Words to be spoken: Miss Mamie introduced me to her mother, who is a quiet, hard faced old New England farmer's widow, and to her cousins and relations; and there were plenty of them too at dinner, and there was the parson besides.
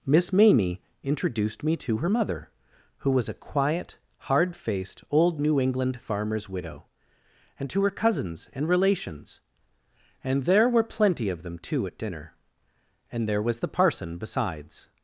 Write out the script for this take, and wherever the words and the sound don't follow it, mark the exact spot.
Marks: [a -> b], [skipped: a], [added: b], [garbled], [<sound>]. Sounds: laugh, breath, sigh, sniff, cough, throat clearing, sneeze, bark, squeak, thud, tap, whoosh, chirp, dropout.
Miss Mamie introduced me to her mother, who [is -> was] a quiet, hard faced old New England farmer's widow, and to her cousins and relations; and there were plenty of them too at dinner, and there was the parson besides.